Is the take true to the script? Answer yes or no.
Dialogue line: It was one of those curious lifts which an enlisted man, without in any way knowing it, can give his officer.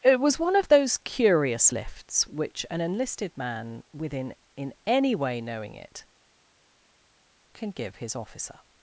no